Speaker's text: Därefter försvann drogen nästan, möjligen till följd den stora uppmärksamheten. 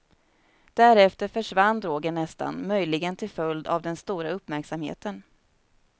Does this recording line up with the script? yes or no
no